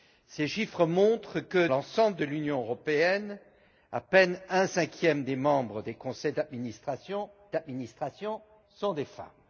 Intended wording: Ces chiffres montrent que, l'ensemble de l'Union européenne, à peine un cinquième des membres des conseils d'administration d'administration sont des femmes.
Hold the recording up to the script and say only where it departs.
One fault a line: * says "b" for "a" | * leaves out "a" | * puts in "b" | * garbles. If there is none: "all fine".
all fine